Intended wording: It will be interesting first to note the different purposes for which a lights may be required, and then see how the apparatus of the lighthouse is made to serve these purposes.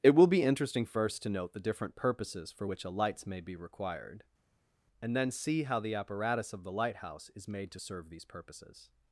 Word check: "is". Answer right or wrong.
right